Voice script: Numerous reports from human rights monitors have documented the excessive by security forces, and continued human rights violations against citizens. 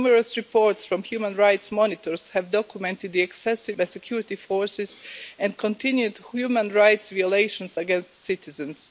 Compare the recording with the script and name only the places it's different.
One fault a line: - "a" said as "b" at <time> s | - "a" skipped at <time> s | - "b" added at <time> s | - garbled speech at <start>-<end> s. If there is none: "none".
none